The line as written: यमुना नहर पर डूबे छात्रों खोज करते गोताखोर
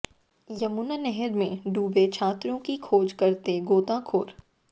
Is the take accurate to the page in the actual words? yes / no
no